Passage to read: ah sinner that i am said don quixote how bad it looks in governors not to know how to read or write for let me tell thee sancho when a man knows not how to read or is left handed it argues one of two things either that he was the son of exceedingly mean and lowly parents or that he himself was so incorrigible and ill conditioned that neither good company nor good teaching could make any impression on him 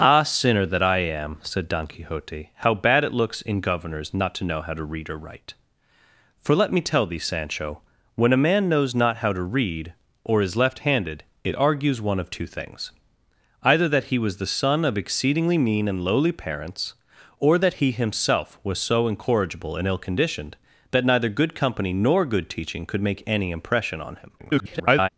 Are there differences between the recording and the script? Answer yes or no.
yes